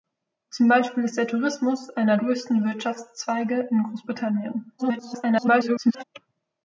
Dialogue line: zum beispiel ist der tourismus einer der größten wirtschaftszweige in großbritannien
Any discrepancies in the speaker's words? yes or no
yes